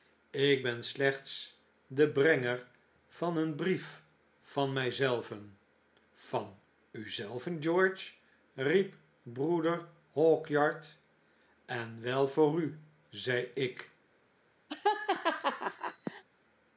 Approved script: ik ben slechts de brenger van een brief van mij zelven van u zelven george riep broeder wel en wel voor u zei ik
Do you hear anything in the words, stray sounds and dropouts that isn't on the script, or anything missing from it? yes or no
yes